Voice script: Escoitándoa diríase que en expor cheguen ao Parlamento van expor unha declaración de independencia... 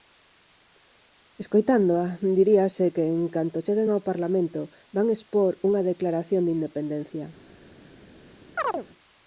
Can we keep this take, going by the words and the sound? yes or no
no